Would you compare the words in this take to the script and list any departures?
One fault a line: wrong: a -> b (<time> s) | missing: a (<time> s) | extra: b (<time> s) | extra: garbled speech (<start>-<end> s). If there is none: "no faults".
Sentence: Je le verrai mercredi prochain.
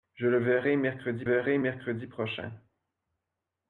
extra: verrai mercredi (1.2 s)